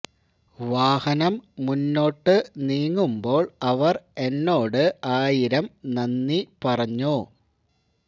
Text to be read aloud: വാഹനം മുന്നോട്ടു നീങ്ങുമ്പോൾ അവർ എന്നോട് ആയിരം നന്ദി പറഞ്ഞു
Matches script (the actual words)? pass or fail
pass